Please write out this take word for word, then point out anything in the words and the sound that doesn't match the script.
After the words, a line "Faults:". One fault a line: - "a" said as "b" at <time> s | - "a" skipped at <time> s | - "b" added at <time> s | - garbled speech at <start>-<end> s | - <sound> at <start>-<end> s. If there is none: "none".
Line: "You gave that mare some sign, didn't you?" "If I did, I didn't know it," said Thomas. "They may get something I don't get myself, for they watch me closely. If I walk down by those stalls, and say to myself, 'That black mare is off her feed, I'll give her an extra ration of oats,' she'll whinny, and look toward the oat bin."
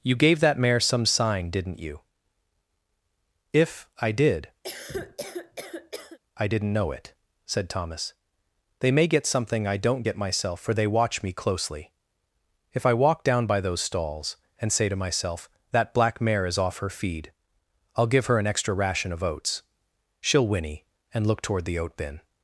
"You gave that mare some sign, didn't you?" "If I did, I didn't know it," said Thomas. "They may get something I don't get myself, for they watch me closely. If I walk down by those stalls, and say to myself, 'That black mare is off her feed, I'll give her an extra ration of oats,' she'll whinny, and look toward the oat bin."
Faults:
- cough at 4.6-6.2 s